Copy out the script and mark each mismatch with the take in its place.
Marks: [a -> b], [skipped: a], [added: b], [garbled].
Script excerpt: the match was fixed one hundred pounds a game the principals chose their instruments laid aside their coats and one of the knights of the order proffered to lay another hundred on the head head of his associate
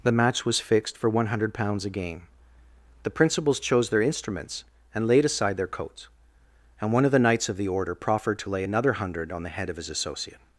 the match was fixed [added: for] one hundred pounds a game the principals chose their instruments [added: and] laid aside their coats and one of the knights of the order proffered to lay another hundred on the head [skipped: head] of his associate